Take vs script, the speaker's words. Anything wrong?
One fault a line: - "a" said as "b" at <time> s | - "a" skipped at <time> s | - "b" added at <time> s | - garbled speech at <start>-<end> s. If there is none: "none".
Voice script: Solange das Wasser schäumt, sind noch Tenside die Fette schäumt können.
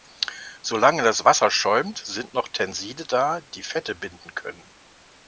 - "da" added at 3.0 s
- "schäumt" said as "binden" at 3.9 s